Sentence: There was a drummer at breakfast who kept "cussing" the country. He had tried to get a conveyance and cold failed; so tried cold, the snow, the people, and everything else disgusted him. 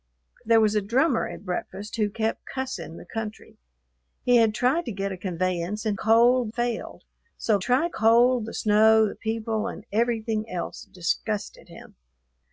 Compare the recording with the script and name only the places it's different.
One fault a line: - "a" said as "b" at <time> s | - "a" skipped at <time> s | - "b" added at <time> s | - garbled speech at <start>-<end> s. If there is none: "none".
none